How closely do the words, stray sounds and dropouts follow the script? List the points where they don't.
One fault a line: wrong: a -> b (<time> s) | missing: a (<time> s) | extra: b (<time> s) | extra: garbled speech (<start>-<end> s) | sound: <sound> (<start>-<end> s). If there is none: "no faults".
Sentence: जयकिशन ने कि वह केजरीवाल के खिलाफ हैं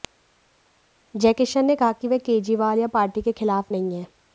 extra: कहा (1.8 s)
extra: या पार्टी (2.8 s)
extra: नहीं (3.7 s)